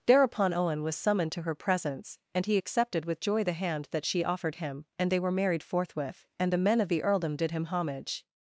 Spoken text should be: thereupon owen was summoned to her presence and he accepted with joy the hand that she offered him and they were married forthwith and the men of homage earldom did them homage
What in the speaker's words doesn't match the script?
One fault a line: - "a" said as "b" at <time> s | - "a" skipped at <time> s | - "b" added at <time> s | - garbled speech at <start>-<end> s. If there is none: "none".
- "homage" said as "the" at 6.9 s
- "them" said as "him" at 7.5 s